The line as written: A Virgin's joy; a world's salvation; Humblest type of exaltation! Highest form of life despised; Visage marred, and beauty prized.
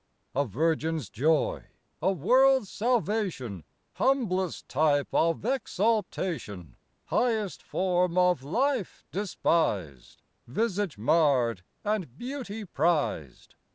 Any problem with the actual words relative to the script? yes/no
no